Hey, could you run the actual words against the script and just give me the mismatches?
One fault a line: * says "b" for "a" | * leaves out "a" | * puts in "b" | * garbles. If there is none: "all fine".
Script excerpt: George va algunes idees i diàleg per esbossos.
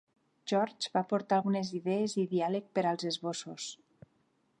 * puts in "aportar"
* puts in "als"